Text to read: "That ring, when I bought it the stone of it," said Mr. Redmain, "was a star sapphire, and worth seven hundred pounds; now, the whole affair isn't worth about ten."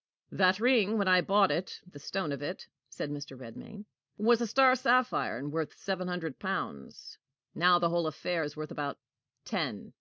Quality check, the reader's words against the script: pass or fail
fail